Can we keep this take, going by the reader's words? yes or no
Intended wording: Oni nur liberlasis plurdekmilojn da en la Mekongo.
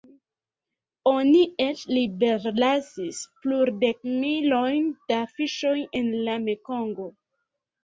no